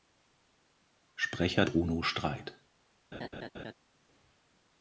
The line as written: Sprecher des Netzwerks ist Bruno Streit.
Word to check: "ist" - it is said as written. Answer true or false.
false